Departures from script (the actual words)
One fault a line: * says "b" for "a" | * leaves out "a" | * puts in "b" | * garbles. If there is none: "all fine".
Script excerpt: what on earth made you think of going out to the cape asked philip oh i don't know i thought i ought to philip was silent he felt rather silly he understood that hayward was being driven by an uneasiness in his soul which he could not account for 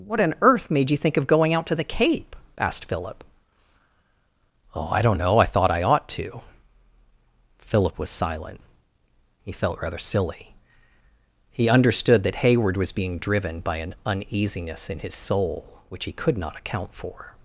all fine